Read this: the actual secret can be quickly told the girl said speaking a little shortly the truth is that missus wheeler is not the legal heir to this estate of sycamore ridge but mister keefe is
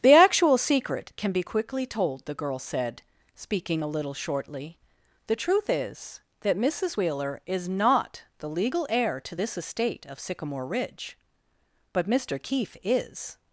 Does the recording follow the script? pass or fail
pass